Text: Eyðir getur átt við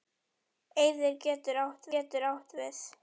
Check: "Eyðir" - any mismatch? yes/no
no